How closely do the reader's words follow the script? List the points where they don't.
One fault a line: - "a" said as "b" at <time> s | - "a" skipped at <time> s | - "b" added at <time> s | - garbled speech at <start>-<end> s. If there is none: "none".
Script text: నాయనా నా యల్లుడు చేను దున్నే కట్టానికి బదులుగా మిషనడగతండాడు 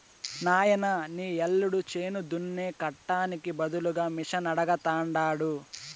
- "నా" said as "నీ" at 1.1 s